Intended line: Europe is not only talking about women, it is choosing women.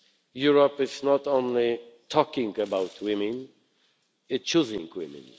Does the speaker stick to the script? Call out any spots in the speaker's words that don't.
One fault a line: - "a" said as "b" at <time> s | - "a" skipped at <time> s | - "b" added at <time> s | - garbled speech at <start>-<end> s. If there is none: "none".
- "is" skipped at 4.5 s